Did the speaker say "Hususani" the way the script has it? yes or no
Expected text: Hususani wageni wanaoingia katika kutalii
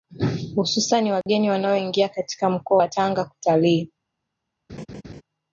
yes